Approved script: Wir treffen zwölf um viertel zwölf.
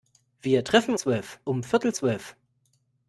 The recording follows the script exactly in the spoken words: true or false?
true